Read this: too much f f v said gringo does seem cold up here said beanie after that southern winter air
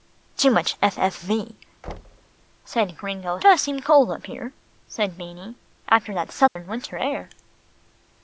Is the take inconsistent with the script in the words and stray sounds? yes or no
yes